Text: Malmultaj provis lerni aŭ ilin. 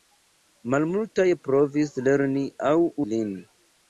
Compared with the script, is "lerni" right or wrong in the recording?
right